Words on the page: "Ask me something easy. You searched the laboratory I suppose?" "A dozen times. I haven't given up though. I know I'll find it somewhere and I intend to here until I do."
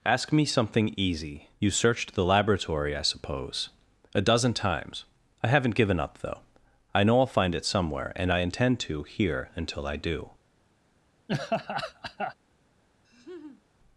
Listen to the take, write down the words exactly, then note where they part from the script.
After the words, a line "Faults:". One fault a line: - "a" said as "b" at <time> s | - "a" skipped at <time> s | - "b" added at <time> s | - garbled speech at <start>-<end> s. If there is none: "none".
"Ask me something easy. You searched the laboratory I suppose?" "A dozen times. I haven't given up though. I know I'll find it somewhere and I intend to here until I do."
Faults:
none